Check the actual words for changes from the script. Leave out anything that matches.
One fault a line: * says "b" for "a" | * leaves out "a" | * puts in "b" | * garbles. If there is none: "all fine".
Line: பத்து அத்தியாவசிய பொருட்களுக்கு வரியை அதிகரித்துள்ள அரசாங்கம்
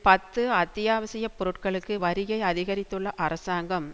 all fine